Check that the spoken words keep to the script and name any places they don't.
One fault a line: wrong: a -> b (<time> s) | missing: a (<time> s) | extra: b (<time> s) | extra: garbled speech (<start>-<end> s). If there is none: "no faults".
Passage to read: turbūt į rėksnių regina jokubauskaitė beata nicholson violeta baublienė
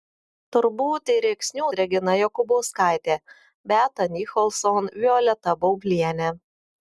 no faults